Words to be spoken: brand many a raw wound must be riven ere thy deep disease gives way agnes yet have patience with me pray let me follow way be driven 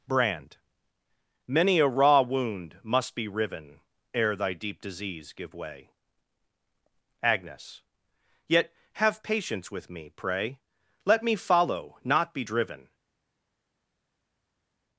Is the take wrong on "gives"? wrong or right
wrong